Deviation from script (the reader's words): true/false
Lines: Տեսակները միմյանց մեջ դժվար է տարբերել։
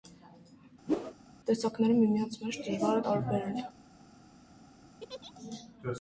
false